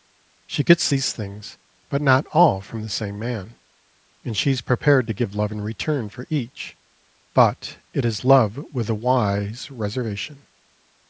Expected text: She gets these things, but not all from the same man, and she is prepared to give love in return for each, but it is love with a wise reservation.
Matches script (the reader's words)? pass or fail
pass